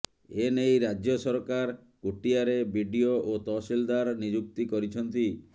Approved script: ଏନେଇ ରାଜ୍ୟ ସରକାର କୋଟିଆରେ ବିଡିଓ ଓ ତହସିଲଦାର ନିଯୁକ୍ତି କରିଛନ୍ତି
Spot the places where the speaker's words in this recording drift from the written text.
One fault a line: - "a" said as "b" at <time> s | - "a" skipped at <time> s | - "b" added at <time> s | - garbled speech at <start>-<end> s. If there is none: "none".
none